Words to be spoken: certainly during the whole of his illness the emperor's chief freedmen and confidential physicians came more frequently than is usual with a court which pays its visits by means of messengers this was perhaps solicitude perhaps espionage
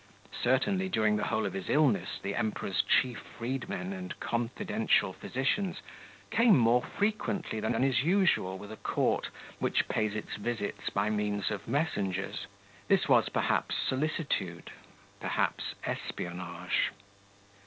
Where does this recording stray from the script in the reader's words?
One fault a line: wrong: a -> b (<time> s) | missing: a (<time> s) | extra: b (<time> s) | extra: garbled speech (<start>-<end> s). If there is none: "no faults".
extra: than (7.7 s)